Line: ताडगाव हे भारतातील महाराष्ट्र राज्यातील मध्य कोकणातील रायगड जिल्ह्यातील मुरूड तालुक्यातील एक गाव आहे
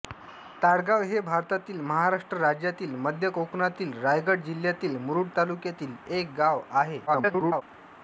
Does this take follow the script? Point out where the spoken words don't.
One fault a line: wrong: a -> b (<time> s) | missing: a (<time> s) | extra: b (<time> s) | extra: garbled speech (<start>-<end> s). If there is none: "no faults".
extra: garbled speech (7.1-7.6 s)